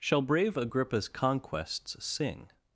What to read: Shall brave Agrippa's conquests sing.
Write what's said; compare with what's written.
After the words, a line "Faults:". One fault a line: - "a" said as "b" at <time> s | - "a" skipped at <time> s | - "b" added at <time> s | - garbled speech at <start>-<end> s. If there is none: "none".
Shall brave Agrippa's conquests sing.
Faults:
none